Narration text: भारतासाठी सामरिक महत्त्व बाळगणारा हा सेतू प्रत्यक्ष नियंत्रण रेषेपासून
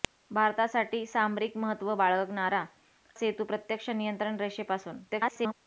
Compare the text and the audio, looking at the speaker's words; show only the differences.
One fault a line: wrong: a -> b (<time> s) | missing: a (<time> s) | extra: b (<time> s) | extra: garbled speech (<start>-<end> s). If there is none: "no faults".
missing: हा (2.6 s)
extra: garbled speech (5.1-5.5 s)